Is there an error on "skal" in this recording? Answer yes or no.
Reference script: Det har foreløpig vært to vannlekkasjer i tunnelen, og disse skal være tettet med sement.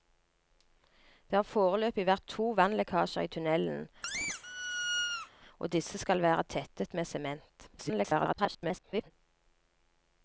no